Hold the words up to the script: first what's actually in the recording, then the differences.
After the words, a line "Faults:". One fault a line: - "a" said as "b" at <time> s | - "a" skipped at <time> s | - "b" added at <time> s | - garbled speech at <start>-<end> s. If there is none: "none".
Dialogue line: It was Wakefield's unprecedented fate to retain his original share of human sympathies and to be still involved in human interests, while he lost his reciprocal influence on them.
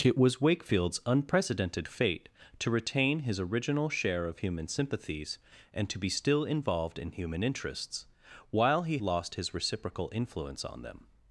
It was Wakefield's unprecedented fate to retain his original share of human sympathies and to be still involved in human interests, while he lost his reciprocal influence on them.
Faults:
none